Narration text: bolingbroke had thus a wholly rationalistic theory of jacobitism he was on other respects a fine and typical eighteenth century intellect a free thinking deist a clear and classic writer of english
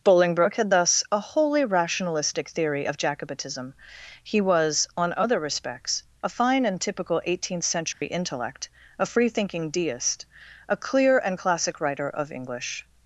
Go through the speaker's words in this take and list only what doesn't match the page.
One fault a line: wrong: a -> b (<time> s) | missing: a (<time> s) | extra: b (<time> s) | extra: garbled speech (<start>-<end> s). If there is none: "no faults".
no faults